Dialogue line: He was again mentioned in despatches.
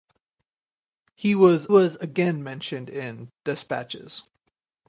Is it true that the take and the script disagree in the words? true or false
true